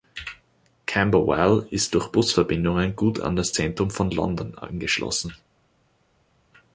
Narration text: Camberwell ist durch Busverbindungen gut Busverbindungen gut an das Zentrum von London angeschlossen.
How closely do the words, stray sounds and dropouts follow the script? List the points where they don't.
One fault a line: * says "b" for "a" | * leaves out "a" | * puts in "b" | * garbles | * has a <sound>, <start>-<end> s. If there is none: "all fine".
* leaves out "Busverbindungen gut"